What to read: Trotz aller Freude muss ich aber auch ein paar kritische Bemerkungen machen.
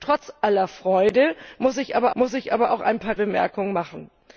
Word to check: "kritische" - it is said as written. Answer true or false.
false